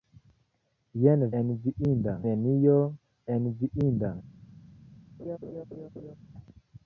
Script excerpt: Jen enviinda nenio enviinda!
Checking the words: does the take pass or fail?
pass